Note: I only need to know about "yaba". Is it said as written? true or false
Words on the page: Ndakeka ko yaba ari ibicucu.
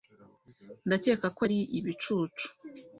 false